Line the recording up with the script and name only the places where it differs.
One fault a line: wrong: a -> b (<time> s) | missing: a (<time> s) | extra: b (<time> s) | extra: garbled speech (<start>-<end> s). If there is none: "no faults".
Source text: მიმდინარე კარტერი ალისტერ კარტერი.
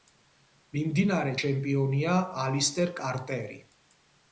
wrong: კარტერი -> ჩემპიონია (1.4 s)